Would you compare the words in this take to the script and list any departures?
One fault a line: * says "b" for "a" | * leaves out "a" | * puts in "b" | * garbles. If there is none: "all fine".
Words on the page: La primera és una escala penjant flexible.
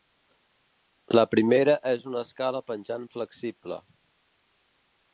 all fine